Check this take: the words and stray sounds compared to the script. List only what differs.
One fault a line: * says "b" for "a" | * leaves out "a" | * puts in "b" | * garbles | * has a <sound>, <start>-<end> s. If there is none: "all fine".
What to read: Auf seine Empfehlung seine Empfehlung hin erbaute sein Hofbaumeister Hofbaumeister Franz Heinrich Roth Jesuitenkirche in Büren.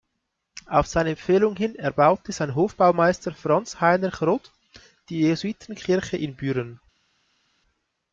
* leaves out "seine Empfehlung"
* leaves out "Hofbaumeister"
* puts in "die"